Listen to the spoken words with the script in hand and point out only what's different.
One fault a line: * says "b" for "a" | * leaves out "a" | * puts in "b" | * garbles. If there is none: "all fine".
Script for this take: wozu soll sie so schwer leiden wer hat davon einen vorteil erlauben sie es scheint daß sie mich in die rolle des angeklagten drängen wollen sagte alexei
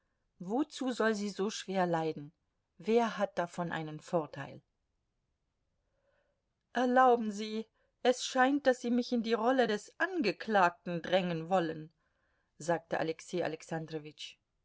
all fine